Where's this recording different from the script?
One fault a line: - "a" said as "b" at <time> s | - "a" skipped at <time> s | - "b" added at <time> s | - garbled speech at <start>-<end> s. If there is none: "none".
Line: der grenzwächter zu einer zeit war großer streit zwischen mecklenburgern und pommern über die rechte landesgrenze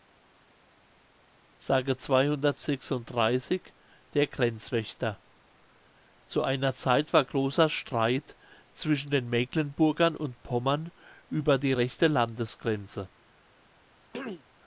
- "den" added at 9.1 s